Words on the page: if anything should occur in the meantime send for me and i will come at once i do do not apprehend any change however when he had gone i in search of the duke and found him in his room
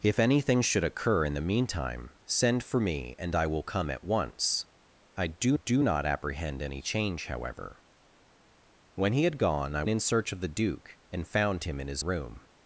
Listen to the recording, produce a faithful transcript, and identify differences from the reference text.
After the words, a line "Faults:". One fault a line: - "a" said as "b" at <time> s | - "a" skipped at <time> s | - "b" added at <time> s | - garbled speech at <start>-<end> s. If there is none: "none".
if anything should occur in the meantime send for me and i will come at once i do do not apprehend any change however when he had gone i in search of the duke and found him in his room
Faults:
none